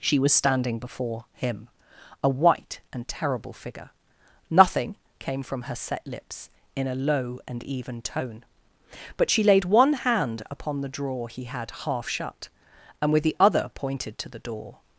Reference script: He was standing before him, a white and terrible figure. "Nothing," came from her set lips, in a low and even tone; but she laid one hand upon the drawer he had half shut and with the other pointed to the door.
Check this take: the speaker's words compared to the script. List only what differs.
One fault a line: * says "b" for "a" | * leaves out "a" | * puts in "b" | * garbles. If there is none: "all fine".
* says "She" for "He"